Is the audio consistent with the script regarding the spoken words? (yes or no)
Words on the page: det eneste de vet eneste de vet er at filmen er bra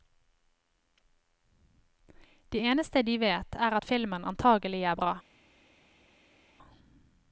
no